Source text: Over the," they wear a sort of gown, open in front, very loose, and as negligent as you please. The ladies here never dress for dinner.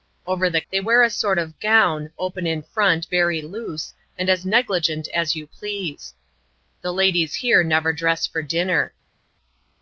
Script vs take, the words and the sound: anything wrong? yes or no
no